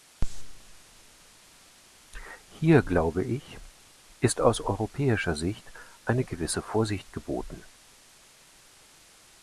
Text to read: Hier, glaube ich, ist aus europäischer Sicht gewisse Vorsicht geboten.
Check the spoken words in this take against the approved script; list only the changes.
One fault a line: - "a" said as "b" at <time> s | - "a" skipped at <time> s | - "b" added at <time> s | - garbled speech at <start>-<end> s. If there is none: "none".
- "eine" added at 6.0 s